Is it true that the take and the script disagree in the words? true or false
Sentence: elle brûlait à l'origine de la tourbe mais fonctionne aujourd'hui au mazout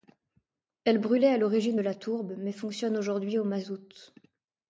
false